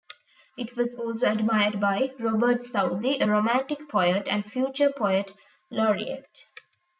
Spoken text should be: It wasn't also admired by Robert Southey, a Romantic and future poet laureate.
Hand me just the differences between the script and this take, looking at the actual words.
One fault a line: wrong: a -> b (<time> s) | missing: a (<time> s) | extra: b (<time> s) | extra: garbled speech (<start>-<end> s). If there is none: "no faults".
wrong: wasn't -> was (0.8 s)
extra: poet (3.9 s)